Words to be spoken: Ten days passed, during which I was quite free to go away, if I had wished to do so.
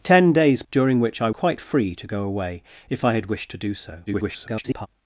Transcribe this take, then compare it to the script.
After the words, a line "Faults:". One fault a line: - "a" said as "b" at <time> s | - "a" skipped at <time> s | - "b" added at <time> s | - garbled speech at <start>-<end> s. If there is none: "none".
Ten days during which I quite free to go away, if I had wished to do so. [garbled]
Faults:
- "passed" skipped at 0.6 s
- "was" skipped at 1.3 s
- garbled speech at 4.1-4.9 s